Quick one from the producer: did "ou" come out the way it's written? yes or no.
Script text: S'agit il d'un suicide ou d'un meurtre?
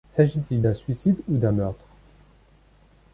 yes